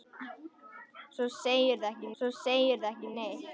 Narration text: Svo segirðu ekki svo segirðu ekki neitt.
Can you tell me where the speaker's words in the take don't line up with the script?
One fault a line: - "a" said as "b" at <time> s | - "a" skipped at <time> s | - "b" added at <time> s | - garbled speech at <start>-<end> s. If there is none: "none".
none